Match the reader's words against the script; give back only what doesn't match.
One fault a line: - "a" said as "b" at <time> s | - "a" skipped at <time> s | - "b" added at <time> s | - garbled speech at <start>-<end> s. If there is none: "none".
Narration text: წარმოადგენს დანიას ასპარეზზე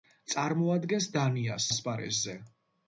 none